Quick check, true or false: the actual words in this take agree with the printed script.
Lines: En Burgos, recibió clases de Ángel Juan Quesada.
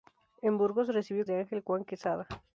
false